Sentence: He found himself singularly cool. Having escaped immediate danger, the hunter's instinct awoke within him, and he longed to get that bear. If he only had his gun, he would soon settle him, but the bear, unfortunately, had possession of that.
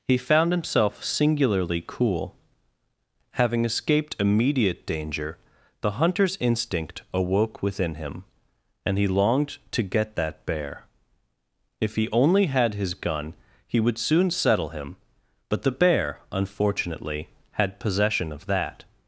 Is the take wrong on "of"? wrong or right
right